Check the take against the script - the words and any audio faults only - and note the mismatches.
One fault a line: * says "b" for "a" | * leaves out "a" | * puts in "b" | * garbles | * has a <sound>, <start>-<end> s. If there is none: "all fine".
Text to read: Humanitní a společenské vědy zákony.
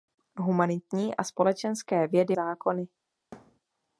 * has a thud, 3.3-3.6 s